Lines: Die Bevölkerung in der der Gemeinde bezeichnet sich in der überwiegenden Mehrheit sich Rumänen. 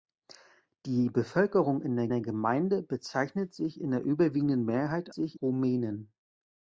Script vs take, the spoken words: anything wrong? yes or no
no